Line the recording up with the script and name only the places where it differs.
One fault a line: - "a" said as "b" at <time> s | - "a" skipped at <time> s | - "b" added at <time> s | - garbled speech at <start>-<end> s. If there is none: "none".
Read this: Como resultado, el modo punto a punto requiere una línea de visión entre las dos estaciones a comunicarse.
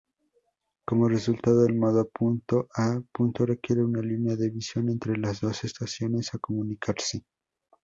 none